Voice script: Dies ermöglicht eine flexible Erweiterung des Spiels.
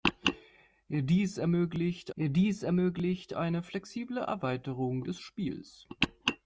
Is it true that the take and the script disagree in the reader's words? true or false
true